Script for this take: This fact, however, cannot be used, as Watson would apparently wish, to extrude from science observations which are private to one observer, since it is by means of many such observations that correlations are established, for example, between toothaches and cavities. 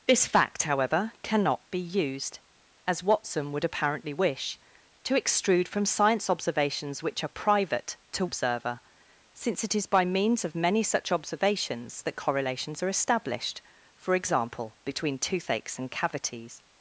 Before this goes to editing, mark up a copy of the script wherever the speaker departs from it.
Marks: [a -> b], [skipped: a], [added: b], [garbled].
This fact, however, cannot be used, as Watson would apparently wish, to extrude from science observations which are private to [skipped: one] observer, since it is by means of many such observations that correlations are established, for example, between toothaches and cavities.